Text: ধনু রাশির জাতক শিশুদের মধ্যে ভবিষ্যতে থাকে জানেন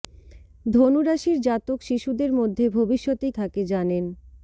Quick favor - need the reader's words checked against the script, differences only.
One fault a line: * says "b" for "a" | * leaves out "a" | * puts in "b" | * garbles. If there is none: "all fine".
all fine